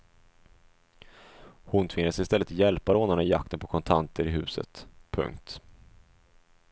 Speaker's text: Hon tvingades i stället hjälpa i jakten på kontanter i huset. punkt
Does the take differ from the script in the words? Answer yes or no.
yes